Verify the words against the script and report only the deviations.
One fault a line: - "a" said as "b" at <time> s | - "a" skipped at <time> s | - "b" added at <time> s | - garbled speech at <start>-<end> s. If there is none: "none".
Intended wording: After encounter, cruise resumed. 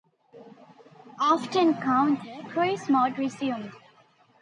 - "mode" added at 2.9 s